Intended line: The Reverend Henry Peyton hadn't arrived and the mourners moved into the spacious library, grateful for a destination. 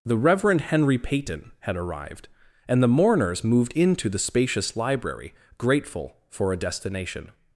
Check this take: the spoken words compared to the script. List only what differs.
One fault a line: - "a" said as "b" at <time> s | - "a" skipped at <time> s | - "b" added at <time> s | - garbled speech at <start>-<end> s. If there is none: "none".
- "hadn't" said as "had" at 1.6 s